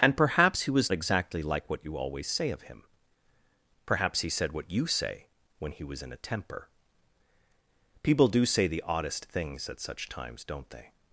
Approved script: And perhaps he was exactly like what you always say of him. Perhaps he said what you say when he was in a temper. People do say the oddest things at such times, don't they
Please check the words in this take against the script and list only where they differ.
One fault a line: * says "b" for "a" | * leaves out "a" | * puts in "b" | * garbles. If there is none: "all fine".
all fine